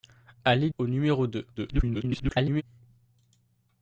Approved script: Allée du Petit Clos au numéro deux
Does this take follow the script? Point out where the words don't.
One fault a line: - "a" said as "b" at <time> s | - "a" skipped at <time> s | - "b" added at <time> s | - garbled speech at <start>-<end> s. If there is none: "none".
- "du Petit Clos" skipped at 0.7 s
- garbled speech at 1.6-2.6 s